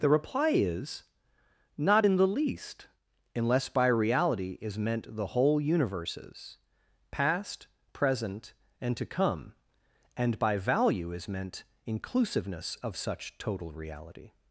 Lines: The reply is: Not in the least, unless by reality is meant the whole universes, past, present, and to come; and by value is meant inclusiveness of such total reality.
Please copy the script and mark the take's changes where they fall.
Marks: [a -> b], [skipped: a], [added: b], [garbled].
The reply is: Not in the least, unless by reality is meant the whole universes, past, present, and to come; and by value is meant inclusiveness of such total reality.